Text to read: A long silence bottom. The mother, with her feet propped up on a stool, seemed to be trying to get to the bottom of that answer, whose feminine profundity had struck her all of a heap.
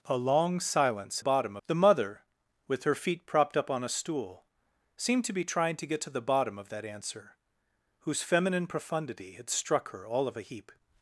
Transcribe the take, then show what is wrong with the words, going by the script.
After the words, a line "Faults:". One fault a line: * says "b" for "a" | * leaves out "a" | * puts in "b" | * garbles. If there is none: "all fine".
A long silence bottom. The mother, with her feet propped up on a stool, seemed to be trying to get to the bottom of that answer, whose feminine profundity had struck her all of a heap.
Faults:
all fine